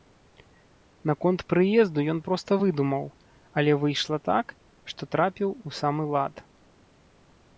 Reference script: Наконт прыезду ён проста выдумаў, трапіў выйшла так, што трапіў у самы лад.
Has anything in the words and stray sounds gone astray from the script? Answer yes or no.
yes